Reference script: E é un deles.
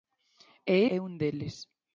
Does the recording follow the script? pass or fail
pass